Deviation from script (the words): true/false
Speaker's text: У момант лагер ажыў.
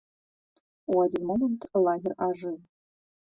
true